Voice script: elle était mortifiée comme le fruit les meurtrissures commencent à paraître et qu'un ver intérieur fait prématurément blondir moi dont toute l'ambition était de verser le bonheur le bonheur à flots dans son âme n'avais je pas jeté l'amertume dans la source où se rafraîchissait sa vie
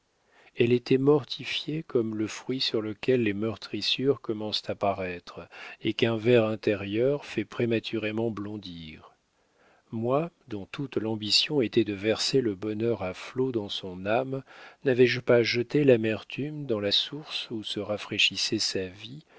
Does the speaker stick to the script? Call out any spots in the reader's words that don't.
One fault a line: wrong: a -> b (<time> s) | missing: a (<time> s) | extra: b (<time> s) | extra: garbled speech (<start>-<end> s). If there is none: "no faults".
extra: sur lequel (2.6 s)
missing: le bonheur (13.0 s)